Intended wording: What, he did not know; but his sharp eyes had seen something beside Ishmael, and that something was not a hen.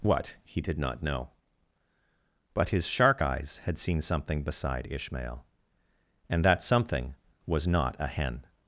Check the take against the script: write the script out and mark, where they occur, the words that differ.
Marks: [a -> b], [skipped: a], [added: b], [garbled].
What, he did not know; but his [sharp -> shark] eyes had seen something beside Ishmael, and that something was not a hen.